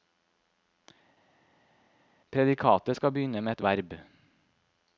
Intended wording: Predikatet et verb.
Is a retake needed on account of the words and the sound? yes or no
yes